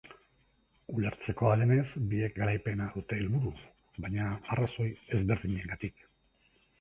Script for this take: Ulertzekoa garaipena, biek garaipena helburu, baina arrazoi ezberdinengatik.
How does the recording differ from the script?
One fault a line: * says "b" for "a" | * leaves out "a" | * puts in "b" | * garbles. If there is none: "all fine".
* says "denez" for "garaipena"
* puts in "dute"